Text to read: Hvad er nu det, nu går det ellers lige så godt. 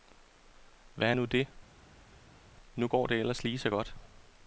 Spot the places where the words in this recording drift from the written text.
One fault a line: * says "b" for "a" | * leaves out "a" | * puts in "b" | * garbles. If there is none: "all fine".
all fine